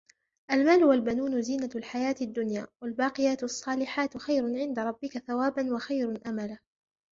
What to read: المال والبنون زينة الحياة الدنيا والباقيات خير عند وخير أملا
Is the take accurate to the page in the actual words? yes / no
no